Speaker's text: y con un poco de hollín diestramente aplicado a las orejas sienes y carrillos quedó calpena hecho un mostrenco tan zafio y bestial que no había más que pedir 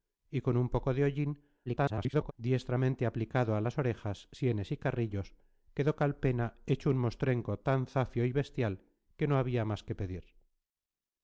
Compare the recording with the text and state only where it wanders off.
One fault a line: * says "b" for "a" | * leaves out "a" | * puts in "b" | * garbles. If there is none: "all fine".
* garbles